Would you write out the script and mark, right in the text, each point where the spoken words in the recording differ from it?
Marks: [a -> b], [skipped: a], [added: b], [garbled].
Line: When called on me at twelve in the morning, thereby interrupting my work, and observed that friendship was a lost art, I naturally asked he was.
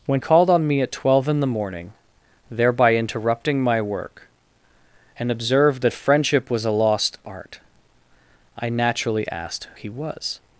When called on me at twelve in the morning, thereby interrupting my work, and observed that friendship was a lost art, I naturally asked he was.